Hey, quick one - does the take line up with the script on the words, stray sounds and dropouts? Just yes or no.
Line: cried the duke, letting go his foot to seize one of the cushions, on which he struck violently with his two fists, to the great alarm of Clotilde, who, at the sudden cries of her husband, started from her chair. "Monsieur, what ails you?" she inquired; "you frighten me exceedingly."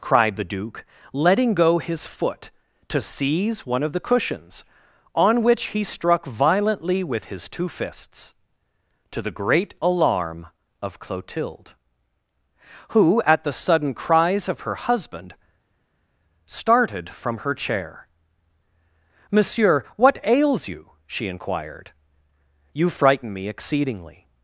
yes